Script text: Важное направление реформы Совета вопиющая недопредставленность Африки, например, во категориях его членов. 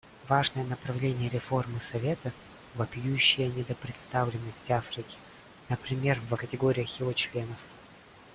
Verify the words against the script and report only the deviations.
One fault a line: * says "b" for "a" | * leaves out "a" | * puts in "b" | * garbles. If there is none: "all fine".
all fine